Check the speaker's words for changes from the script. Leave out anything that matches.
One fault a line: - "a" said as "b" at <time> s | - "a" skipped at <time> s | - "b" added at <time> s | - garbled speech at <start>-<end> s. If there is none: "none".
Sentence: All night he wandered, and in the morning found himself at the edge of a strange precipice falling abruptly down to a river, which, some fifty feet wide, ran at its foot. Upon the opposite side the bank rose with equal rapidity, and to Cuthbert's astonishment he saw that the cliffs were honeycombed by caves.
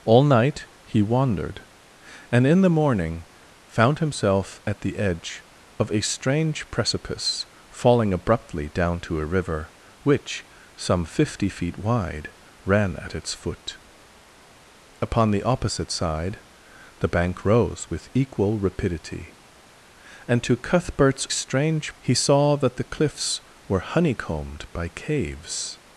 - "astonishment" said as "strange" at 21.3 s